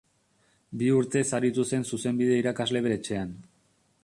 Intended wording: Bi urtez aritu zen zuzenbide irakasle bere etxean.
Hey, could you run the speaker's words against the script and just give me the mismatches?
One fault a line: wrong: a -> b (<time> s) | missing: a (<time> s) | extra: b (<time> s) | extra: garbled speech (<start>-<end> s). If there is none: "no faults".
no faults